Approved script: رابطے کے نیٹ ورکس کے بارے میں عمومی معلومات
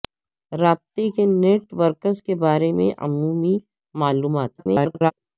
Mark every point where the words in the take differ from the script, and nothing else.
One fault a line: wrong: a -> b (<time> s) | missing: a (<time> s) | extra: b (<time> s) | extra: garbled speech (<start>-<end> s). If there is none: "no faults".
extra: garbled speech (4.6-5.1 s)